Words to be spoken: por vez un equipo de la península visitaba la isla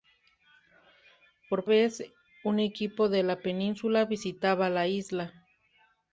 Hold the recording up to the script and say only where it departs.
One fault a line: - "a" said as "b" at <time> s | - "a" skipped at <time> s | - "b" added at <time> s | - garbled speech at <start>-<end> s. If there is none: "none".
none